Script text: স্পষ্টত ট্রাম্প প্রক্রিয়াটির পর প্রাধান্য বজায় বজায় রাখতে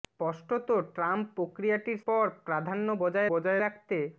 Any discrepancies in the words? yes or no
no